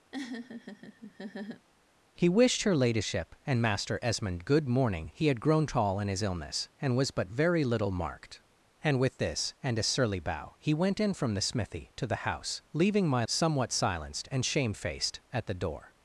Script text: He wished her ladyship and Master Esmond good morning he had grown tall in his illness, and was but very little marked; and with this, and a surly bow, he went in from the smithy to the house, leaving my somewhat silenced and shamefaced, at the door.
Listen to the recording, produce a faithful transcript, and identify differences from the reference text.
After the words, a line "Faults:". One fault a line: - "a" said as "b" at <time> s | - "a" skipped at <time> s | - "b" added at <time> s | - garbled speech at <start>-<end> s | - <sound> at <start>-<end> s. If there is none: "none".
He wished her ladyship and Master Esmond good morning he had grown tall in his illness, and was but very little marked; and with this, and a surly bow, he went in from the smithy to the house, leaving my somewhat silenced and shamefaced, at the door.
Faults:
- laugh at 0.1-1.7 s